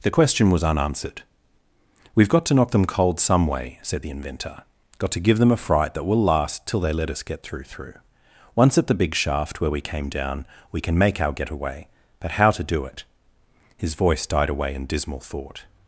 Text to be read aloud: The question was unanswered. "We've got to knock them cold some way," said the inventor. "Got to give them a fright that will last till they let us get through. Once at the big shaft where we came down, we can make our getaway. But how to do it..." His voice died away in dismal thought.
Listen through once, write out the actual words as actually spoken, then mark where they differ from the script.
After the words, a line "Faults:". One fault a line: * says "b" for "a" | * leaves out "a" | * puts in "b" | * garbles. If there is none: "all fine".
The question was unanswered. "We've got to knock them cold some way," said the inventor. "Got to give them a fright that will last till they let us get through through. Once at the big shaft where we came down, we can make our getaway. But how to do it..." His voice died away in dismal thought.
Faults:
* puts in "through"